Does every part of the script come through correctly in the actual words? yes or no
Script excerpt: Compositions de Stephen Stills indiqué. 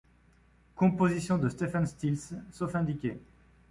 no